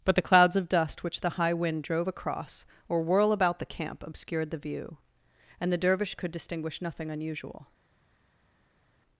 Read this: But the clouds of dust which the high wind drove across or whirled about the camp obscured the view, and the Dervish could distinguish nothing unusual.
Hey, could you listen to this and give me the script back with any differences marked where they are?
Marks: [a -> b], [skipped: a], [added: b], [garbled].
But the clouds of dust which the high wind drove across or [whirled -> whirl] about the camp obscured the view, and the Dervish could distinguish nothing unusual.